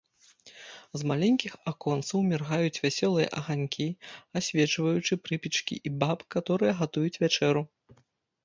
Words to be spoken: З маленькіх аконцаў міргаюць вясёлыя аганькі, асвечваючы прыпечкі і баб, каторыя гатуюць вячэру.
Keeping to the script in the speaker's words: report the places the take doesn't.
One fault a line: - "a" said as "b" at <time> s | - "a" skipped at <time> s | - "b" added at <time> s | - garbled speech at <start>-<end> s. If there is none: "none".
none